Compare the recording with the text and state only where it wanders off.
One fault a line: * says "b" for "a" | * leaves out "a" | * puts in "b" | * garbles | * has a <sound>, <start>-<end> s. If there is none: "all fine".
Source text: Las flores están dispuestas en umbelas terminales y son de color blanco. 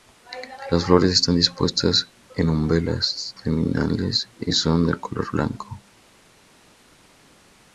all fine